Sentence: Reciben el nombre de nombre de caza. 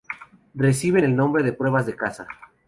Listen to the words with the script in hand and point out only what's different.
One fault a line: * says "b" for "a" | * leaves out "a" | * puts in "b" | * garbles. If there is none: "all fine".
* says "pruebas" for "nombre"